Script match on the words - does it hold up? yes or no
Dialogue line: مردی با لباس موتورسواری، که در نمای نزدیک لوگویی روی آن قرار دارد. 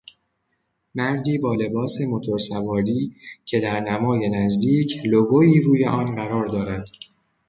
yes